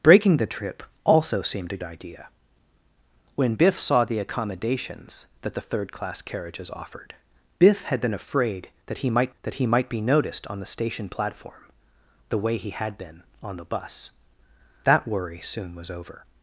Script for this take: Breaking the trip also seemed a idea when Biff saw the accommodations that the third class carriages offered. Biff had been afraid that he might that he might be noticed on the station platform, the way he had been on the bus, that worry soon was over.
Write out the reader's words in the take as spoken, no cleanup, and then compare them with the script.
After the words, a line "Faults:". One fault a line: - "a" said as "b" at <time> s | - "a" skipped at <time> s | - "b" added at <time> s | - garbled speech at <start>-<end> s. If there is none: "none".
Breaking the trip also seemed a idea when Biff saw the accommodations that the third class carriages offered. Biff had been afraid that he might that he might be noticed on the station platform, the way he had been on the bus, that worry soon was over.
Faults:
none